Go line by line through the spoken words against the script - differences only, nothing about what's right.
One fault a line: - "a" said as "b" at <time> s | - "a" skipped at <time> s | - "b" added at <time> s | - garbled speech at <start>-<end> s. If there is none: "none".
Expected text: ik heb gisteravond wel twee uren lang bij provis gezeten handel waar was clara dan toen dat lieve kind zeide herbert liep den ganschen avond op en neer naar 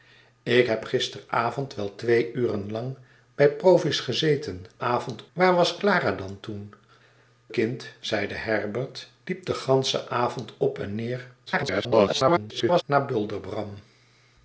- "handel" said as "avond" at 4.8 s
- "dat lieve" skipped at 6.7 s
- garbled speech at 11.5-12.8 s